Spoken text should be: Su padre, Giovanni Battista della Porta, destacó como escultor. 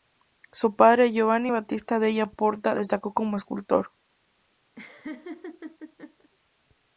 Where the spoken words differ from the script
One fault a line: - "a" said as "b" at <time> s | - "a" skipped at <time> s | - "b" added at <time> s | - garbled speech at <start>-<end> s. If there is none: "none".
none